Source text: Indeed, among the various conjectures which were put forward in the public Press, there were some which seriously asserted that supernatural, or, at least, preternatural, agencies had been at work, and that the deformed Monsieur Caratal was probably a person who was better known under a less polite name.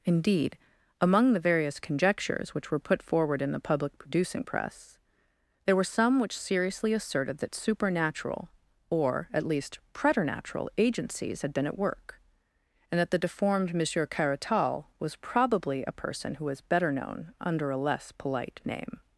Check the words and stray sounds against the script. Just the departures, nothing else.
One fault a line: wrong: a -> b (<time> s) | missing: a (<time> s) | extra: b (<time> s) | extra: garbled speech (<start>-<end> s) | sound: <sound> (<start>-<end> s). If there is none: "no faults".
extra: producing (4.0 s)